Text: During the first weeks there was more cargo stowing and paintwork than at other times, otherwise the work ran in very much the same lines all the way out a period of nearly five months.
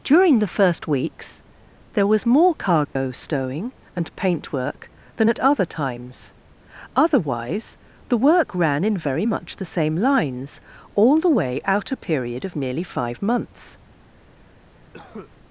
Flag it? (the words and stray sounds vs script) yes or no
yes